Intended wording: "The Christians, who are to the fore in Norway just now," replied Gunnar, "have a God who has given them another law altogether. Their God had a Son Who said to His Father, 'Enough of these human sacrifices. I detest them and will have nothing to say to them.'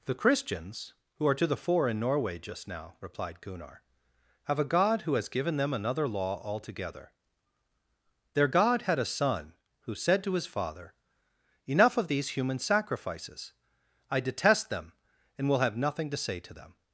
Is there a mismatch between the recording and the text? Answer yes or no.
no